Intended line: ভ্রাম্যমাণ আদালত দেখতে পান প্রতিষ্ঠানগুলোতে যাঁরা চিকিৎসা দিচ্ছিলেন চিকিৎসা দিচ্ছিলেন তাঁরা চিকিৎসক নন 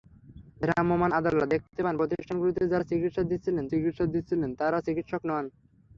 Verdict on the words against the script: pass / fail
pass